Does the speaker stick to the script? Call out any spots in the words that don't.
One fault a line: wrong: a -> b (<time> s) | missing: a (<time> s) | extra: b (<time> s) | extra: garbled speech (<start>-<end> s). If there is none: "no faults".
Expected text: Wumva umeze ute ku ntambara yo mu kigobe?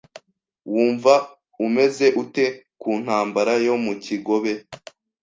no faults